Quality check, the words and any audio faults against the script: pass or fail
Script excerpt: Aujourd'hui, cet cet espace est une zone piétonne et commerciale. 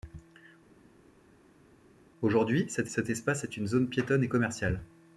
pass